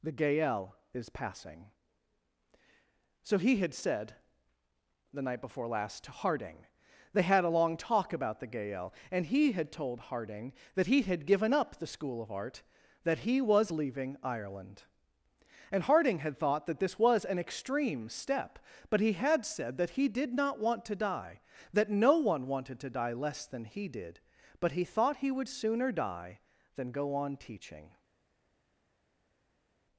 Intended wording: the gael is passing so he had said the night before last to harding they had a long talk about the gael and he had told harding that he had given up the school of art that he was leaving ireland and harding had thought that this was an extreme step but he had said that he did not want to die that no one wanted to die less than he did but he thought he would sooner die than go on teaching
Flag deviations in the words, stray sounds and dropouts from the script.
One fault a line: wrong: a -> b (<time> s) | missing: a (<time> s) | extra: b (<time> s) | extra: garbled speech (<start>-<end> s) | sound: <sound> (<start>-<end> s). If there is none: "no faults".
no faults